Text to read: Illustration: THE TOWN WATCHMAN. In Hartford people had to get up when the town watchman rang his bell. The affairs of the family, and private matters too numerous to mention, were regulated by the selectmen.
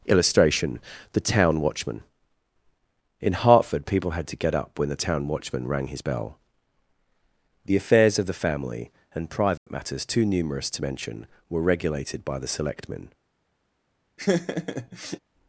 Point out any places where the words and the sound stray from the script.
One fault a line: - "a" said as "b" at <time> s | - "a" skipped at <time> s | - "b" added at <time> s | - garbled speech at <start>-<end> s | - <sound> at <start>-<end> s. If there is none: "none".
- dropout at 9.6-9.7 s
- laugh at 14.2-15.2 s